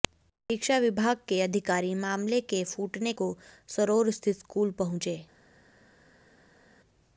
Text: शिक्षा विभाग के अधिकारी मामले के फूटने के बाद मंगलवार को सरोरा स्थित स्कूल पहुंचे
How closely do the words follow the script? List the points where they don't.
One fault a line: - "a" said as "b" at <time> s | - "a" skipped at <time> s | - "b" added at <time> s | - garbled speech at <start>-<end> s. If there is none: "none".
- "के बाद मंगलवार" skipped at 3.1 s